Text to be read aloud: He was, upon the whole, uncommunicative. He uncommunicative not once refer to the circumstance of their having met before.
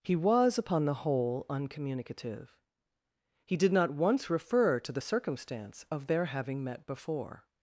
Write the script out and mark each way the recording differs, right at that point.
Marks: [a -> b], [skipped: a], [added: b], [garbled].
He was, upon the whole, uncommunicative. He [uncommunicative -> did] not once refer to the circumstance of their having met before.